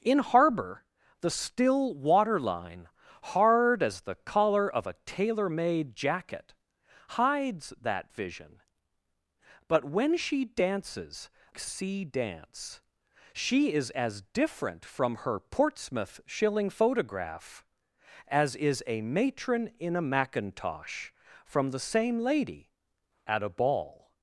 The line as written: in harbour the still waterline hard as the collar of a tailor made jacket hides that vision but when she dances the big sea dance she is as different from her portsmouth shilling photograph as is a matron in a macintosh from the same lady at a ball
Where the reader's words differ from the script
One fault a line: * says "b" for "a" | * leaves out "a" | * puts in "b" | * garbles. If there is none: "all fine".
* leaves out "the big"